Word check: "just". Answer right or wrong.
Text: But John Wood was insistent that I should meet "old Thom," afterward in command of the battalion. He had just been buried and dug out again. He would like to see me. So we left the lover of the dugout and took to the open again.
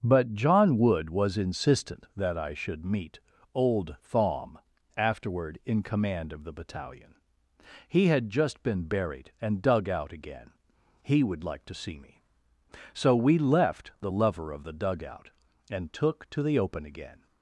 right